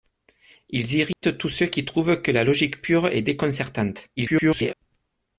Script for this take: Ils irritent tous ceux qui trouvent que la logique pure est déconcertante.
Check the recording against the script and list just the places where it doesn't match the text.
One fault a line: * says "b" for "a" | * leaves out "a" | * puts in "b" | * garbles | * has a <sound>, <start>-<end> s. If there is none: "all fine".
* has a dropout, 1.1-1.2 s
* garbles